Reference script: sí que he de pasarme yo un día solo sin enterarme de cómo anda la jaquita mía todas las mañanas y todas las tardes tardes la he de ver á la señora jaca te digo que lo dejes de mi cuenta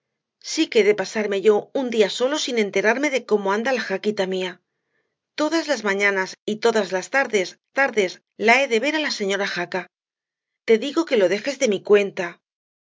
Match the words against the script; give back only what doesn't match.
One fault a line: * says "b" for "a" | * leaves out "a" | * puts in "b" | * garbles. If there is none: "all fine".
all fine